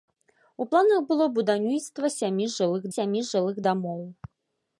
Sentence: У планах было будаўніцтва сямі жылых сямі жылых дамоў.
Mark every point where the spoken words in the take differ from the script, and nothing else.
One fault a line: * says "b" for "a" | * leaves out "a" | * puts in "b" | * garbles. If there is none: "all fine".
all fine